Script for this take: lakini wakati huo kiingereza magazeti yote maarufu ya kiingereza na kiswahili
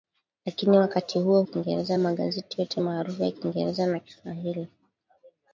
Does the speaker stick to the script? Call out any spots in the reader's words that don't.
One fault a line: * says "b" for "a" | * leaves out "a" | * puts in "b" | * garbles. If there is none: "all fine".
all fine